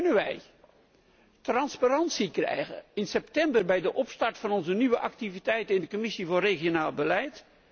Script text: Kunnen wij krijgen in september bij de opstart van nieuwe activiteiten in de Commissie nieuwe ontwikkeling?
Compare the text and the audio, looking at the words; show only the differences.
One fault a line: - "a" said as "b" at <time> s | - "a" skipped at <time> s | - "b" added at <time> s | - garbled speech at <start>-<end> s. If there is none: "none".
- "transparantie" added at 1.4 s
- "onze" added at 4.5 s
- "nieuwe" said as "regionale" at 6.4 s